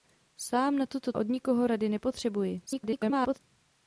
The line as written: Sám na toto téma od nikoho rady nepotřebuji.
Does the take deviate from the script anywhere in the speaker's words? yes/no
yes